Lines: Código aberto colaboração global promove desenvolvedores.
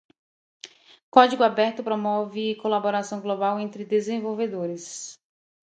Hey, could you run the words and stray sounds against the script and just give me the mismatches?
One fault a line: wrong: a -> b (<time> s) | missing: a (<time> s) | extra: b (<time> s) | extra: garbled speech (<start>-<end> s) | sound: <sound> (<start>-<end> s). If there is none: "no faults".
extra: promove (1.8 s)
wrong: promove -> entre (3.6 s)